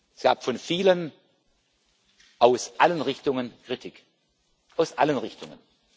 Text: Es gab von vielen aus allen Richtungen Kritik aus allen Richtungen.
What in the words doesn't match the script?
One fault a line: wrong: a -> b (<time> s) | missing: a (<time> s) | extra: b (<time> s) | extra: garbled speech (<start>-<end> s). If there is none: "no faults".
no faults